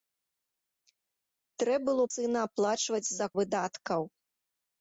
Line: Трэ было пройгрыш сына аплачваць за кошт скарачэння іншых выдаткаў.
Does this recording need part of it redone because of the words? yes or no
yes